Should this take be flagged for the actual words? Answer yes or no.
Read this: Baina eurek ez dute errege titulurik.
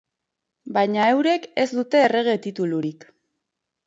no